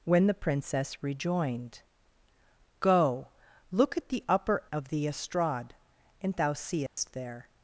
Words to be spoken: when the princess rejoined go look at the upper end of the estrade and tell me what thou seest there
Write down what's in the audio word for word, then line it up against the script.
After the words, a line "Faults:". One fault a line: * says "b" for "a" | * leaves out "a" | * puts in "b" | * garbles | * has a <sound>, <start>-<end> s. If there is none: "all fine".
when the princess rejoined go look at the upper of the estrade and thou seest there
Faults:
* leaves out "end"
* leaves out "tell me what"
* has a dropout, 6.9-7.0 s